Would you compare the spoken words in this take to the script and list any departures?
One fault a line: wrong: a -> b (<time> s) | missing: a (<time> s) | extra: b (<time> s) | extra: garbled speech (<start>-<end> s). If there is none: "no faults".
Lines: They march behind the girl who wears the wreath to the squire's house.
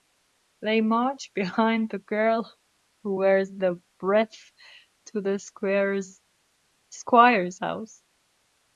no faults